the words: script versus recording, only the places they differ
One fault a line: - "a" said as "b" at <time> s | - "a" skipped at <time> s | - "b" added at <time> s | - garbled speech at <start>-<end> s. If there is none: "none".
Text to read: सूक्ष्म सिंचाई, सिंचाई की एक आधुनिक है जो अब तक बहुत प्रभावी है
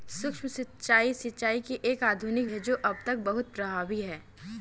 none